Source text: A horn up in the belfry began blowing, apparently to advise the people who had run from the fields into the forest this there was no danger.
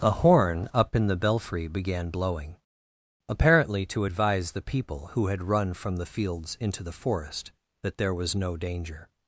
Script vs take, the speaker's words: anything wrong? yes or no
yes